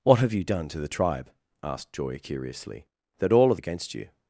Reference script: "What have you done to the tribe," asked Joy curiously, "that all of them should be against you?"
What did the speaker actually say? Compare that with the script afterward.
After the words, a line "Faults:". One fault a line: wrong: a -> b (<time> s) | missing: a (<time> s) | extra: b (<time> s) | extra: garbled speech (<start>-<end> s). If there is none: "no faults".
"What have you done to the tribe," asked Joy curiously, "that all of against you?"
Faults:
missing: them should be (3.6 s)